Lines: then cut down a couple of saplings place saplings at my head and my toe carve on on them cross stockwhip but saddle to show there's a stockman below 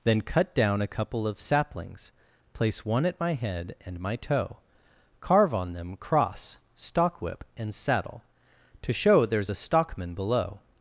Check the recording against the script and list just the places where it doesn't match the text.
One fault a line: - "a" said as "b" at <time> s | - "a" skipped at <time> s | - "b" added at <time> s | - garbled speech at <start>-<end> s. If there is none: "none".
- "saplings" said as "one" at 2.8 s
- "on" skipped at 5.7 s
- "but" said as "and" at 7.6 s